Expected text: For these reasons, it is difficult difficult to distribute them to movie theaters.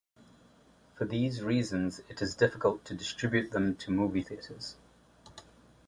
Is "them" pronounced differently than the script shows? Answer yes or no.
no